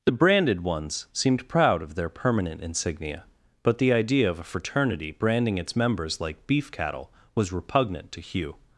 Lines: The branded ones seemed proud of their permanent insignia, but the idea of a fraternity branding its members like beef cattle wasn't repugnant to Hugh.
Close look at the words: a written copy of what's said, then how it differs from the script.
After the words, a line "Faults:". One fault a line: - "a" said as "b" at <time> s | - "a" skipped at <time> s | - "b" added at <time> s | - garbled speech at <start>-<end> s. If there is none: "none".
The branded ones seemed proud of their permanent insignia, but the idea of a fraternity branding its members like beef cattle was repugnant to Hugh.
Faults:
- "wasn't" said as "was" at 7.3 s